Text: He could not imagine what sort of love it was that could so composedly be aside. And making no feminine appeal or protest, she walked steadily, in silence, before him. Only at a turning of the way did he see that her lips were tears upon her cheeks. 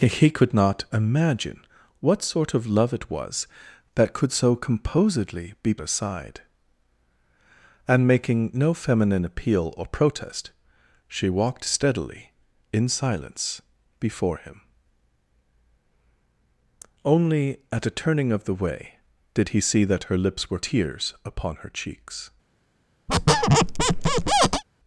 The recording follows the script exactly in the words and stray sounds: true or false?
false